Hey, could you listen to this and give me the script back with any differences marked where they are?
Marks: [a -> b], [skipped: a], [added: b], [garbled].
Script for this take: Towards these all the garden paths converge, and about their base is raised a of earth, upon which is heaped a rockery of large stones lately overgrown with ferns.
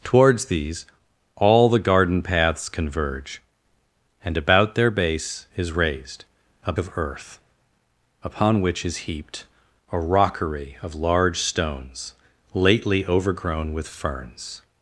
Towards these all the garden paths converge, and about their base is raised a of earth, upon which is heaped a rockery of large stones lately overgrown with ferns.